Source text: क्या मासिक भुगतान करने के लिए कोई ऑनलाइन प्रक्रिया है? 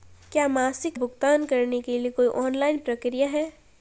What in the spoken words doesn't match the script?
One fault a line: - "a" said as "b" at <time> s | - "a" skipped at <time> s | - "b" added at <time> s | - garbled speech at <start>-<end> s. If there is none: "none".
none